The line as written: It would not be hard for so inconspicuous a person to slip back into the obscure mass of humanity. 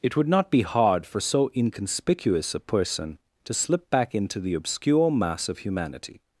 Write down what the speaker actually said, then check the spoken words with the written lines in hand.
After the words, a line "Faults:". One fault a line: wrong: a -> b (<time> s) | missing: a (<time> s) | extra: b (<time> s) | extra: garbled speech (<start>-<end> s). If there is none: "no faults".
It would not be hard for so inconspicuous a person to slip back into the obscure mass of humanity.
Faults:
no faults